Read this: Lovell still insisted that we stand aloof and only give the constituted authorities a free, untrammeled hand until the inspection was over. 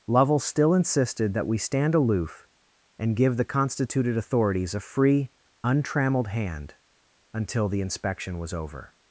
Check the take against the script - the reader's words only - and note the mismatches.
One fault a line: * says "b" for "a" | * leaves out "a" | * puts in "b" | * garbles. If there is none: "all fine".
* leaves out "only"